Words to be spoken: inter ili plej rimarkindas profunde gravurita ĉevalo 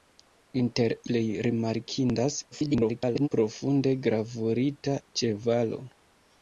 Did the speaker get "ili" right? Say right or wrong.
wrong